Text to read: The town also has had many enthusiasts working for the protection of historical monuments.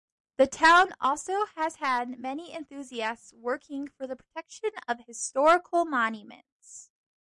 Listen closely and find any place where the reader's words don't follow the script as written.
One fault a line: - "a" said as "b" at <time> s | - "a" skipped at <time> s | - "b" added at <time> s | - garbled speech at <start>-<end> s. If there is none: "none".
none